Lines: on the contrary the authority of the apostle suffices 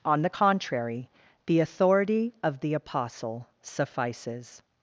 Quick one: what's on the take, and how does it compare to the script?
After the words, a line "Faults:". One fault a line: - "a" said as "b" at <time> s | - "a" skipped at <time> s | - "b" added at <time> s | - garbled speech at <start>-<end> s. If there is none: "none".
on the contrary the authority of the apostle suffices
Faults:
none